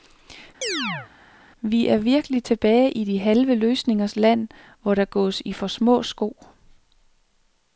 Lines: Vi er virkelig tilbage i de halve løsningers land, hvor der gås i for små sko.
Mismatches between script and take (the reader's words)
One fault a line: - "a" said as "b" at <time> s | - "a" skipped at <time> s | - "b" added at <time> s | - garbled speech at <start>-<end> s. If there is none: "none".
none